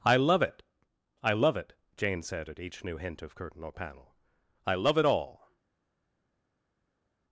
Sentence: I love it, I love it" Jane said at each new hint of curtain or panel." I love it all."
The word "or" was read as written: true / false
true